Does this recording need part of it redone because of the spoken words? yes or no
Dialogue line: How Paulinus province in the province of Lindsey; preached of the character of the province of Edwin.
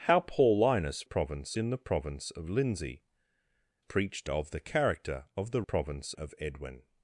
no